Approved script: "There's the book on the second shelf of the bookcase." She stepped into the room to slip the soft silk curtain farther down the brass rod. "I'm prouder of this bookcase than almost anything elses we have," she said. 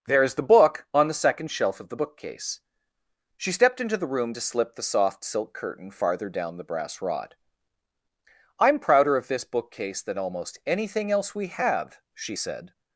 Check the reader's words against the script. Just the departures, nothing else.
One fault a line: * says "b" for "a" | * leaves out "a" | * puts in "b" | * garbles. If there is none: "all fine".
* says "else" for "elses"